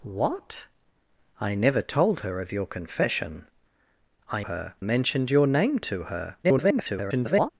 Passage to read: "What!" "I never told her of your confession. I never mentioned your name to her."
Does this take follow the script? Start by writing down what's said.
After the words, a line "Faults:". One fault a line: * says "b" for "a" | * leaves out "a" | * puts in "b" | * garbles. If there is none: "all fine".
"What!" "I never told her of your confession. I her mentioned your name to her." [garbled]
Faults:
* says "her" for "never"
* garbles